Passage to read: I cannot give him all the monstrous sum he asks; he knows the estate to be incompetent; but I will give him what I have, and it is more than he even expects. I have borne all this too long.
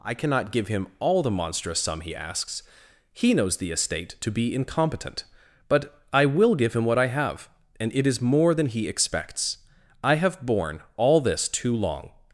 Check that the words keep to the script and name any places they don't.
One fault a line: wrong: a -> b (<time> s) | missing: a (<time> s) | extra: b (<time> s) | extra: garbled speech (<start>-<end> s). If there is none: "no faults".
missing: even (8.9 s)